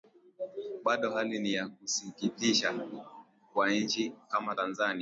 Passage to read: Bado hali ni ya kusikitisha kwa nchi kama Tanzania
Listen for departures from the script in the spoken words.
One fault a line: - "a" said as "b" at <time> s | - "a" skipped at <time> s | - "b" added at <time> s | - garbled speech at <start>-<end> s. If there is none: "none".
none